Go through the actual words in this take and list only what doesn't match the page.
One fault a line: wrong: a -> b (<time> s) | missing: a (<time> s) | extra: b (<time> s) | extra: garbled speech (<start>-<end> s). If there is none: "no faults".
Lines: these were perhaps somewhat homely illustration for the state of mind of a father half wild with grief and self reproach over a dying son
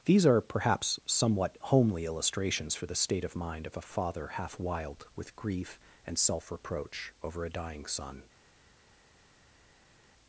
wrong: were -> are (0.2 s)
wrong: illustration -> illustrations (2.0 s)